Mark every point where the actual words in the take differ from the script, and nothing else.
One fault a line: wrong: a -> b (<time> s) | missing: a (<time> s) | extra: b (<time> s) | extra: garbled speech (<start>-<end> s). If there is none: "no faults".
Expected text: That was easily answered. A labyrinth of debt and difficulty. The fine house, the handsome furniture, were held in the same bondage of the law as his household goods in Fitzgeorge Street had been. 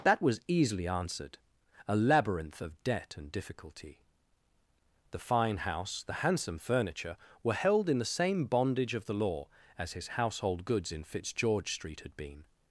no faults